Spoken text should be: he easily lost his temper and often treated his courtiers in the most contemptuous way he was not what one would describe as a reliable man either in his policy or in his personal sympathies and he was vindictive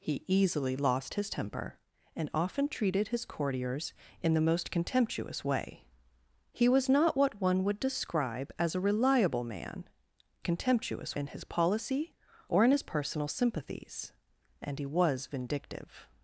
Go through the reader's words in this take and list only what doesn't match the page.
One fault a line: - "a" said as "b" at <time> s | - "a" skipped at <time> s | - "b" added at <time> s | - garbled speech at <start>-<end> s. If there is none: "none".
- "either" said as "contemptuous" at 10.4 s